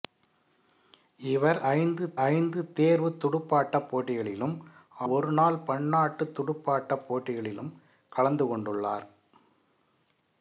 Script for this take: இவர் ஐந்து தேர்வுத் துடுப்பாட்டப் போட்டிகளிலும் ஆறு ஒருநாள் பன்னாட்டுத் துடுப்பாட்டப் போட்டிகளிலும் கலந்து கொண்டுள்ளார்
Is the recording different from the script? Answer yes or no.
yes